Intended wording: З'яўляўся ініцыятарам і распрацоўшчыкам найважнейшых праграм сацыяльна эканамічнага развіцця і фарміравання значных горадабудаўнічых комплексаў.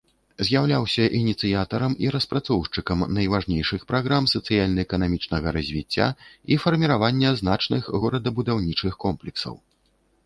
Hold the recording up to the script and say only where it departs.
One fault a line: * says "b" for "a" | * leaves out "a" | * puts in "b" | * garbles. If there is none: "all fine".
all fine